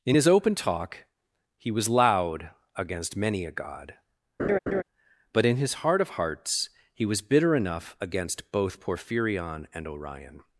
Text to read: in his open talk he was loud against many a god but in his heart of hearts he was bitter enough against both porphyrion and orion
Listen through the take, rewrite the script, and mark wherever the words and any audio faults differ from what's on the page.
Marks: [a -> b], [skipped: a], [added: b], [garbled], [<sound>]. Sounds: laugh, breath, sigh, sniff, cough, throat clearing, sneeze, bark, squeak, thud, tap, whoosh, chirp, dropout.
in his open talk he was loud against many a god [laugh] but in his heart of hearts he was bitter enough against both porphyrion and orion